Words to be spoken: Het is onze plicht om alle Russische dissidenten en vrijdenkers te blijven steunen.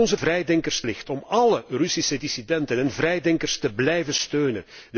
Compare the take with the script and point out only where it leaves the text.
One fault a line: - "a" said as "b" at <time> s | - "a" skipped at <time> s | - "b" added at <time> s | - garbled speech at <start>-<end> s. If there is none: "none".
- "onze" said as "vrijdenkers" at 0.1 s